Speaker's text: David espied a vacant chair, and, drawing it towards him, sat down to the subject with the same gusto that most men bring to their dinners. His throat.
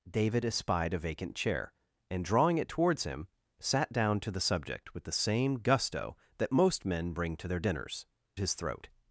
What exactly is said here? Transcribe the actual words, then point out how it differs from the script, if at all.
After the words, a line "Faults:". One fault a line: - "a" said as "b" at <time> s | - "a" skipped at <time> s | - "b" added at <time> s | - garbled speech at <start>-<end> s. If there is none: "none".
David espied a vacant chair, and, drawing it towards him, sat down to the subject with the same gusto that most men bring to their dinners. His throat.
Faults:
none